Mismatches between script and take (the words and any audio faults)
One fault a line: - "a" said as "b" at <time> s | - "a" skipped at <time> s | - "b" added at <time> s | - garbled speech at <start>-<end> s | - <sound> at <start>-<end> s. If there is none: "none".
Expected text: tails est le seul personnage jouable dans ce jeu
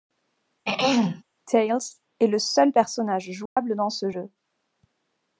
- throat clearing at 0.7-1.2 s
- dropout at 3.5-3.6 s